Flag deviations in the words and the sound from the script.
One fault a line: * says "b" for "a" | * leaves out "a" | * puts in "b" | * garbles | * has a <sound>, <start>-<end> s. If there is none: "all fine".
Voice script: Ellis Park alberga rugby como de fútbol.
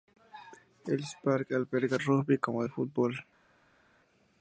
all fine